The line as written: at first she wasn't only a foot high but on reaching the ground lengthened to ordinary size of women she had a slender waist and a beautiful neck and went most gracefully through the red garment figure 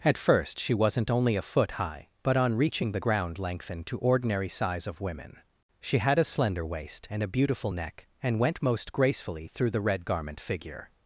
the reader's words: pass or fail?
pass